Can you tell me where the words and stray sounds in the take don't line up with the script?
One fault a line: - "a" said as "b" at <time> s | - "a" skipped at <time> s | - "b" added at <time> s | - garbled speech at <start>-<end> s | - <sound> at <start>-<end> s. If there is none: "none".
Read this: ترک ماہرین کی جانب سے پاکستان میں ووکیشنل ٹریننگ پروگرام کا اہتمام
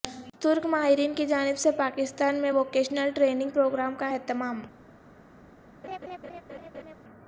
- laugh at 5.8-7.0 s